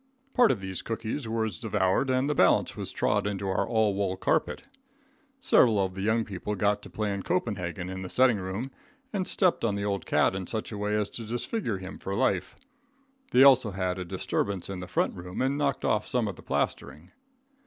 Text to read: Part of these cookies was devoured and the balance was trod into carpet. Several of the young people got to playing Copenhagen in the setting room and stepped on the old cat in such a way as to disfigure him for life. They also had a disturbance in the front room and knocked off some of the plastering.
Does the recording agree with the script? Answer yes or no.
no